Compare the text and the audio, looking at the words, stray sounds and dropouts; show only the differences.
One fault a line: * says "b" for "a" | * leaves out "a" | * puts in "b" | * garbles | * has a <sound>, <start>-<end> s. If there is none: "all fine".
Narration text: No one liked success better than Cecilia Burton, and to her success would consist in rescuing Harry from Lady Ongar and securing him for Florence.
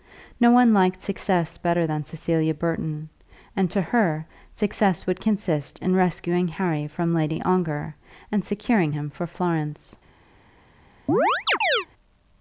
* has a chirp, 11.1-11.9 s